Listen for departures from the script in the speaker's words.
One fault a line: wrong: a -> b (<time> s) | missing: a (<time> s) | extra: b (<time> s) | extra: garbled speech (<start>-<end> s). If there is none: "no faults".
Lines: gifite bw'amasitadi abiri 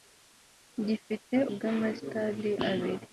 no faults